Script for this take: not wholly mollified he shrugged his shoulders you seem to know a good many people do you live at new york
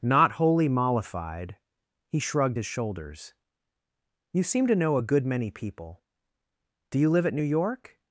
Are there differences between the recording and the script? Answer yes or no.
no